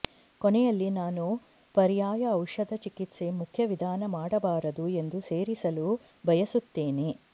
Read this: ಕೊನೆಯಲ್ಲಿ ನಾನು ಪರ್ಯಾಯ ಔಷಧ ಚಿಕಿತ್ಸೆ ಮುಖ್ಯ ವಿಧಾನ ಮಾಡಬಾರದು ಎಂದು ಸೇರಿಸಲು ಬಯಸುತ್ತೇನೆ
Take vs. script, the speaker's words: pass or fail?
pass